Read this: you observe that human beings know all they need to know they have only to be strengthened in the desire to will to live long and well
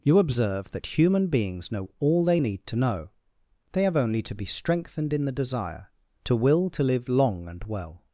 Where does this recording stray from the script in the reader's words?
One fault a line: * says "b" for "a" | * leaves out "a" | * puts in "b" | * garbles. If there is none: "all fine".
all fine